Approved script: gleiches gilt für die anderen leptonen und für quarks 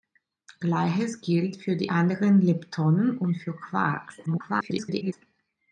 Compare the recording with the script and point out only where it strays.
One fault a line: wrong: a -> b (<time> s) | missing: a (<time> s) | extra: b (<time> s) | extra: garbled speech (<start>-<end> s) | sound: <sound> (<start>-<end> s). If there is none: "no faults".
extra: garbled speech (4.3-5.1 s)